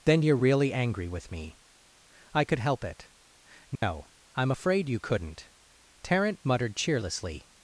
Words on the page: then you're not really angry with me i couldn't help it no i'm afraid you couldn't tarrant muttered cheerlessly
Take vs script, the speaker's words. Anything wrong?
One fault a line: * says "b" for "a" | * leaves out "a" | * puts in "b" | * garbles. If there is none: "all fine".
* leaves out "not"
* says "could" for "couldn't"